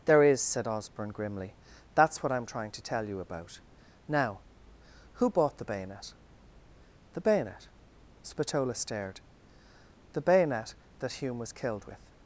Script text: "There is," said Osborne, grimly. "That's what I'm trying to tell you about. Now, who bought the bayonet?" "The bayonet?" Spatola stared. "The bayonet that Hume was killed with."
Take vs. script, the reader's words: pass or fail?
pass